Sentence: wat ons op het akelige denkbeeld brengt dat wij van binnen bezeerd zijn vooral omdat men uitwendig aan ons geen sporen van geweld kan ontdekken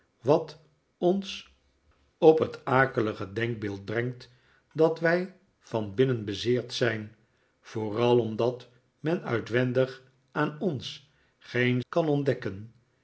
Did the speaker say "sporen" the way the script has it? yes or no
no